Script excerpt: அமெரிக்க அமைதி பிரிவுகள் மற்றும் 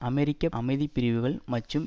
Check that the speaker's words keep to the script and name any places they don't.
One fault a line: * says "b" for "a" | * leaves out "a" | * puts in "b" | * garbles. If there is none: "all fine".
all fine